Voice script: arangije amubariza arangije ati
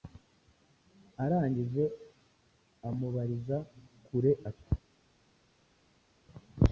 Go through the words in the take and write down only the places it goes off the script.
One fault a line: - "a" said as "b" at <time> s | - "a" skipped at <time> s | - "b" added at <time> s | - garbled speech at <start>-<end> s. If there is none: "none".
- "arangije" said as "kure" at 4.0 s